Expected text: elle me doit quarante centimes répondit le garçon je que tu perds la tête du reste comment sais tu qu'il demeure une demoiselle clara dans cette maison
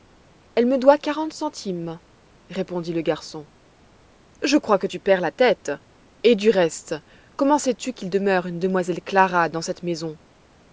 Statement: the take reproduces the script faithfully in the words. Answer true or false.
false